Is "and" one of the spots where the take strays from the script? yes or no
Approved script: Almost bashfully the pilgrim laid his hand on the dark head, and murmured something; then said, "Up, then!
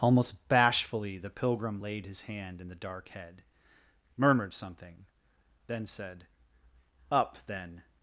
yes